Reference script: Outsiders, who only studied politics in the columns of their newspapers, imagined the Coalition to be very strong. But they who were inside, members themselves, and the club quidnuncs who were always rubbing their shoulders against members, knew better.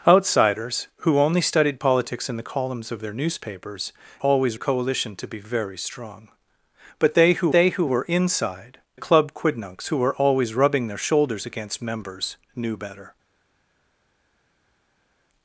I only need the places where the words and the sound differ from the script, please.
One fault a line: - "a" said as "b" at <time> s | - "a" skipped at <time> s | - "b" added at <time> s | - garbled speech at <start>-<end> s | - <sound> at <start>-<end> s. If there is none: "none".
- "imagined" said as "always" at 4.2 s
- "they who" added at 7.5 s
- "members themselves and" skipped at 8.8 s